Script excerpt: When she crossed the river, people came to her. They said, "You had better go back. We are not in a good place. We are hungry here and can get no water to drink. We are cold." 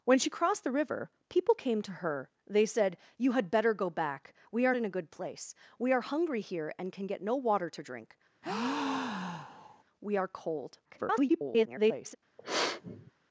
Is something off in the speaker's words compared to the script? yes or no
yes